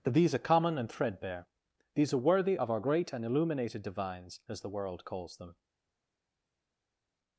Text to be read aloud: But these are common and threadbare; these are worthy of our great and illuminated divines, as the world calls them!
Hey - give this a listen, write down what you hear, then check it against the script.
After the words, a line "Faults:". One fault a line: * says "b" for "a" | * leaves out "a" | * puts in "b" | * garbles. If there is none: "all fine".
That these are common and threadbare; these are worthy of our great and illuminated divines, as the world calls them!
Faults:
* says "That" for "But"